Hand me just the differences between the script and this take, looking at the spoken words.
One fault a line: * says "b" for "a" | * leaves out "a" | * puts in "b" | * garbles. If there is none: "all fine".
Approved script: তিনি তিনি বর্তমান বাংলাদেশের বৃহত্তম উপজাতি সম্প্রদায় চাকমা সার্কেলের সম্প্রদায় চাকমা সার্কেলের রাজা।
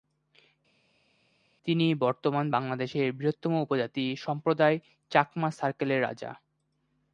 * leaves out "তিনি"
* leaves out "সম্প্রদায় চাকমা সার্কেলের"